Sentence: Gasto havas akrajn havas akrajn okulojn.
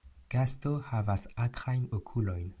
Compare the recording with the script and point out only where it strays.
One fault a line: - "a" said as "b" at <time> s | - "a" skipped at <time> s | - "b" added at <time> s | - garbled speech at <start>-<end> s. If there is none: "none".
- "havas akrajn" skipped at 1.9 s